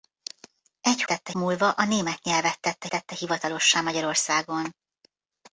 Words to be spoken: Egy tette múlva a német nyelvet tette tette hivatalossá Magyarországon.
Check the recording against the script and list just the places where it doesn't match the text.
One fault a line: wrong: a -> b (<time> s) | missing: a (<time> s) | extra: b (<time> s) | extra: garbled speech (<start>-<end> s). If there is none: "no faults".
no faults